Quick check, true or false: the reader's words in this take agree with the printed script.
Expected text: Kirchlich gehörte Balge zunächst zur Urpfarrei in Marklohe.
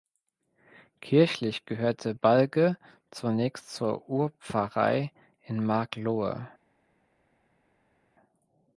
true